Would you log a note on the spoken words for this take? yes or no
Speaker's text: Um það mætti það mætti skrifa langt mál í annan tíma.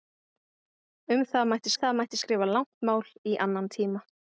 no